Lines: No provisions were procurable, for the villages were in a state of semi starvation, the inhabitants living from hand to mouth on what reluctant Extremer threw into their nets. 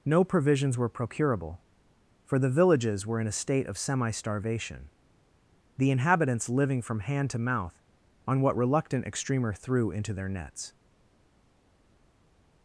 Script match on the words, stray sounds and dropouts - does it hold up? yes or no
yes